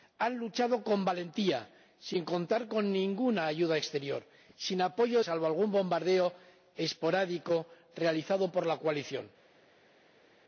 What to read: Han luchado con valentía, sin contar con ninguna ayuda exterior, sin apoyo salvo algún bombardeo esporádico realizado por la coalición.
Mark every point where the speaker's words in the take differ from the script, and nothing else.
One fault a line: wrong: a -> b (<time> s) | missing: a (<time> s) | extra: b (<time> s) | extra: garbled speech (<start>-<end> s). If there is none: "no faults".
no faults